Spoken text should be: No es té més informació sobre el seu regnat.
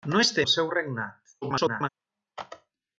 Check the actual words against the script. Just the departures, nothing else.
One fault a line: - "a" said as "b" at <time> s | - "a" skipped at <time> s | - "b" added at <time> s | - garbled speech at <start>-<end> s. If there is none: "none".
- "més informació sobre" skipped at 0.4 s
- garbled speech at 1.4-1.9 s